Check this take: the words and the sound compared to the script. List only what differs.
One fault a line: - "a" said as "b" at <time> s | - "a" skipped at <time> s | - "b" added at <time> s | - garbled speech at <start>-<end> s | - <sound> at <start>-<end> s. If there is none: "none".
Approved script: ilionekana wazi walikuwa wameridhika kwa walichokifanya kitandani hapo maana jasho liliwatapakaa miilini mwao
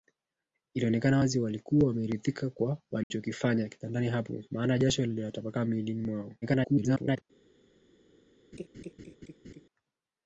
- dropout at 3.0-3.1 s
- garbled speech at 6.4-7.2 s
- laugh at 8.5-9.6 s